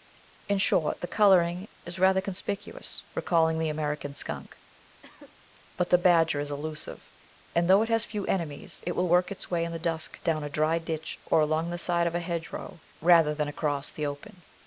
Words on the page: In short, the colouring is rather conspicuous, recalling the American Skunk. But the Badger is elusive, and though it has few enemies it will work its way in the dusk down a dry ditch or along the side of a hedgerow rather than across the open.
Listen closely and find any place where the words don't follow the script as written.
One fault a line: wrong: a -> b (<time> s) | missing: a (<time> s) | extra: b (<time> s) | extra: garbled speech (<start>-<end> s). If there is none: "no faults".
no faults